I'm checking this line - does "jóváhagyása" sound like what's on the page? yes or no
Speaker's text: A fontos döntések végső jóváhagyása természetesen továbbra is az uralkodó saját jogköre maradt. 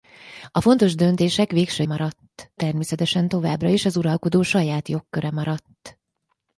no